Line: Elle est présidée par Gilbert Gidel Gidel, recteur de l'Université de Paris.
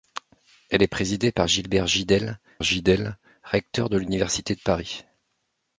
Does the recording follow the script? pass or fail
pass